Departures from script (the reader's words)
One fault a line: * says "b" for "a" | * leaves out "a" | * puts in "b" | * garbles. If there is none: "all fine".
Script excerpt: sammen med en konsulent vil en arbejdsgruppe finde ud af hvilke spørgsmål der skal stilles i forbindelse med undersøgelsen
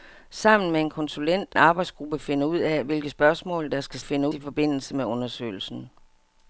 * leaves out "vil en"
* says "finde" for "stilles"